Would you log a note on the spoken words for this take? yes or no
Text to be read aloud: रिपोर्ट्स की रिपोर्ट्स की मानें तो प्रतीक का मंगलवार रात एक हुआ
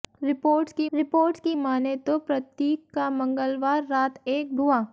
no